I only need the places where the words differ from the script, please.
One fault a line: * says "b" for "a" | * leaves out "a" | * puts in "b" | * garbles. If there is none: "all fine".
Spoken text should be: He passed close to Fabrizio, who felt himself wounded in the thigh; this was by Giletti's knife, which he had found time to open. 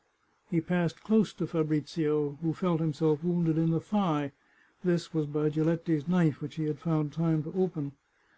all fine